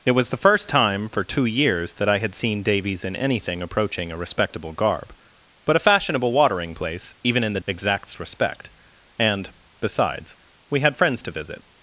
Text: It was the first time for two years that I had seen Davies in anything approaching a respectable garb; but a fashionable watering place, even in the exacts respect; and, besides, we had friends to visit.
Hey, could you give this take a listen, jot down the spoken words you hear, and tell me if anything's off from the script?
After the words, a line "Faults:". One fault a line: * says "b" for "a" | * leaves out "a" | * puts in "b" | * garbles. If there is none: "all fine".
It was the first time for two years that I had seen Davies in anything approaching a respectable garb; but a fashionable watering place, even in the exacts respect; and, besides, we had friends to visit.
Faults:
all fine